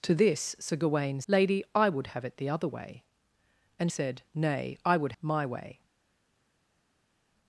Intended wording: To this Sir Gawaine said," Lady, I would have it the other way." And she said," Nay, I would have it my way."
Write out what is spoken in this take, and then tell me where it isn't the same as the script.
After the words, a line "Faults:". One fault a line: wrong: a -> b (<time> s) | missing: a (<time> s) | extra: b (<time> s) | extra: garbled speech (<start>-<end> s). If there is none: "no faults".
To this Sir Gawaine," Lady, I would have it the other way." And said," Nay, I would my way."
Faults:
missing: said (1.2 s)
missing: she (3.9 s)
missing: have it (5.1 s)